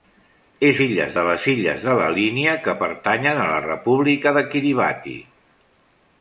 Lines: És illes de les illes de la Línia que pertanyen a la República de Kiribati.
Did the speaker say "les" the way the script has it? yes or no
yes